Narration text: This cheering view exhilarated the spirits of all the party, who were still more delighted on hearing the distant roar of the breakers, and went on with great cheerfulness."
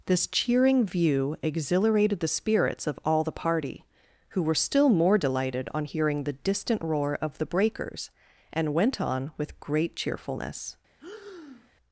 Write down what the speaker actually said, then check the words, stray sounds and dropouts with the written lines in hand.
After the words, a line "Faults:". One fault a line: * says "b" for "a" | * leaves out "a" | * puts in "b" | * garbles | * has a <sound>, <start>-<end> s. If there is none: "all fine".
This cheering view exhilarated the spirits of all the party, who were still more delighted on hearing the distant roar of the breakers, and went on with great cheerfulness."
Faults:
* has a breath, 11.0-11.7 s